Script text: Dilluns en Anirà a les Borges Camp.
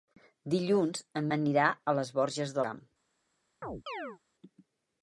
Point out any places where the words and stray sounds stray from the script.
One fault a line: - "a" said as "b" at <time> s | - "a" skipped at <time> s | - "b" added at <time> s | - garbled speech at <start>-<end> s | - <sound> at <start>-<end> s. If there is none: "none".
- chirp at 3.6-4.2 s